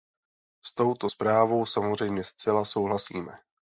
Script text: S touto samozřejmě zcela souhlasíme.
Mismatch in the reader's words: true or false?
true